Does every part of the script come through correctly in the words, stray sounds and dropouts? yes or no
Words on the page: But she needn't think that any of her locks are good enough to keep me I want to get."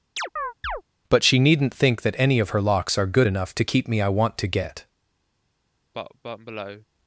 no